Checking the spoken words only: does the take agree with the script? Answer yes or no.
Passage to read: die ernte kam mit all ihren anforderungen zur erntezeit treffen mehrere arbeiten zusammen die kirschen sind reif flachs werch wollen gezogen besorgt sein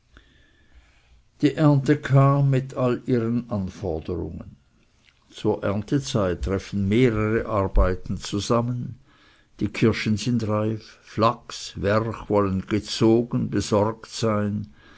yes